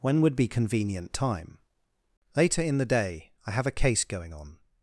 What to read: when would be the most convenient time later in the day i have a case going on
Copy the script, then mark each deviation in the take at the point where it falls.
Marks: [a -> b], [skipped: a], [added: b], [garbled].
when would be [skipped: the most] convenient time later in the day i have a case going on